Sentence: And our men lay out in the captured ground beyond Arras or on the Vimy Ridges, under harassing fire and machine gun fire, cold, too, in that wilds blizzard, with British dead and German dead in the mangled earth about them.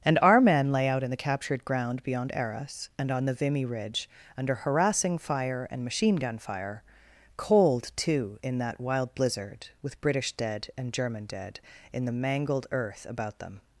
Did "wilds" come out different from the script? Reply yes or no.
yes